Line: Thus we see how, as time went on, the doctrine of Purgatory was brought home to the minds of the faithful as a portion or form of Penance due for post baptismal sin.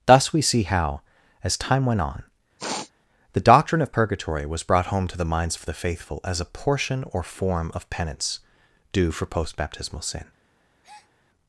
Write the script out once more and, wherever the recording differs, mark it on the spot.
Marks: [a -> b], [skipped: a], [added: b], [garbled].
Thus we see how, as time went on, the doctrine of Purgatory was brought home to the minds of the faithful as a portion or form of Penance due for post baptismal sin.